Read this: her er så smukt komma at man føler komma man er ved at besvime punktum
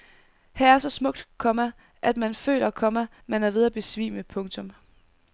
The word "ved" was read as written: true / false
true